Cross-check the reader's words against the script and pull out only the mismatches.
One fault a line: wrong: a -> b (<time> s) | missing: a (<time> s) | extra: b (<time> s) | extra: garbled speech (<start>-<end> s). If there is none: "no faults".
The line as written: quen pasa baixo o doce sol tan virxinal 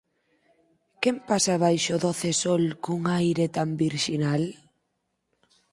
extra: cun aire (2.8 s)